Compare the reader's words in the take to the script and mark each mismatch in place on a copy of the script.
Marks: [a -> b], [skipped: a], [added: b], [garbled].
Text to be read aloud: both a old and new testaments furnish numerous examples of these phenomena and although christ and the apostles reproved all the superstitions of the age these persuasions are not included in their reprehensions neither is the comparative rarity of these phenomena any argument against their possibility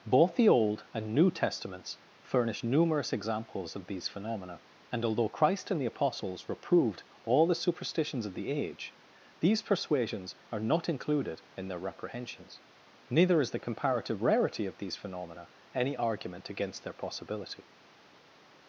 both [a -> the] old and new testaments furnish numerous examples of these phenomena and although christ and the apostles reproved all the superstitions of the age these persuasions are not included in their reprehensions neither is the comparative rarity of these phenomena any argument against their possibility